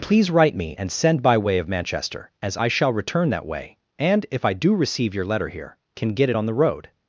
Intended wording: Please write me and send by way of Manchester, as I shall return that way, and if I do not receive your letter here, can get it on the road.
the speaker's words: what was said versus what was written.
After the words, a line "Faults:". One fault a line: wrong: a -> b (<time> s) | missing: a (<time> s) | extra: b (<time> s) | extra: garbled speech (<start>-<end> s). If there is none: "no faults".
Please write me and send by way of Manchester, as I shall return that way, and if I do receive your letter here, can get it on the road.
Faults:
missing: not (4.7 s)